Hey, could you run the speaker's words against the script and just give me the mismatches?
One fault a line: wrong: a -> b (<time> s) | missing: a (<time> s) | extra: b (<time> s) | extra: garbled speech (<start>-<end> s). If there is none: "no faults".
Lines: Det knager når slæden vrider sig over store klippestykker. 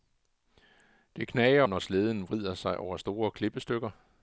no faults